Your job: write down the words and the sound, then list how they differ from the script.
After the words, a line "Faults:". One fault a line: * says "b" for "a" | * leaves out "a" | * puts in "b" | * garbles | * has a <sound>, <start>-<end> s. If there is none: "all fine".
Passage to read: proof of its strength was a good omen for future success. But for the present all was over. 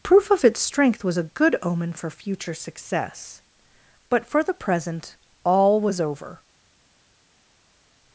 proof of its strength was a good omen for future success. But for the present all was over.
Faults:
all fine